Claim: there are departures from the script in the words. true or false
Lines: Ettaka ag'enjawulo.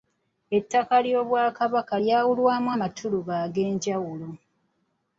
true